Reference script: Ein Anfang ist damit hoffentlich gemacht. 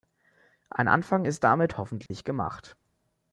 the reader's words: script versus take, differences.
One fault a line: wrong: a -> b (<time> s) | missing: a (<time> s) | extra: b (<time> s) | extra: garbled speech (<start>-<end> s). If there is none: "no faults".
no faults